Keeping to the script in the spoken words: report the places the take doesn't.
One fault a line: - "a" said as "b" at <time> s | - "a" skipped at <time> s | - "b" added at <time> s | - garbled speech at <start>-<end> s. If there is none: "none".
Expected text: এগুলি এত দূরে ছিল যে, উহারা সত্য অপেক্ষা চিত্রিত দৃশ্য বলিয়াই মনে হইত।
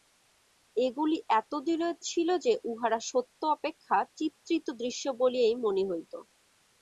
- "দূরে" skipped at 1.5 s